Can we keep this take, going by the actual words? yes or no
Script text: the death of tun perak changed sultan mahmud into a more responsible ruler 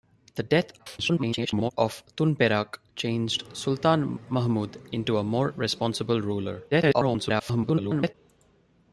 no